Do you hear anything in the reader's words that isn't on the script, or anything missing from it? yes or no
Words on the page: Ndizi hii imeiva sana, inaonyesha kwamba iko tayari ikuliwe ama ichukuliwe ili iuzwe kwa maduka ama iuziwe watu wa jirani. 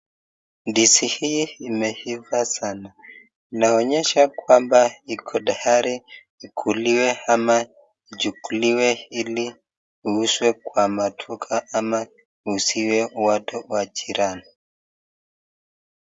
no